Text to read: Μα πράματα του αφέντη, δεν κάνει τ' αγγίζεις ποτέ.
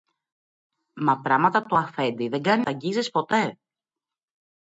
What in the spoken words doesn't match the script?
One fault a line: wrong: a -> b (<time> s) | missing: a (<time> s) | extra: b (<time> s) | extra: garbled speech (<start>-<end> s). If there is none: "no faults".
no faults